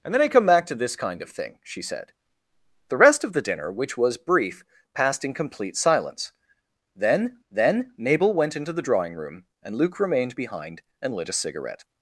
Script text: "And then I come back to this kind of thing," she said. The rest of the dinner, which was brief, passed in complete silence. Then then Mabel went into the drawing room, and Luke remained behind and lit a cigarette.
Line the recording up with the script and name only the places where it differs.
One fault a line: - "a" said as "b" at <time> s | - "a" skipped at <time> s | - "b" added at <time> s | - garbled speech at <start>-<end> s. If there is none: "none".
none